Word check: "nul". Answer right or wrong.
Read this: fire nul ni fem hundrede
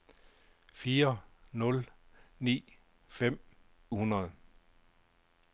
right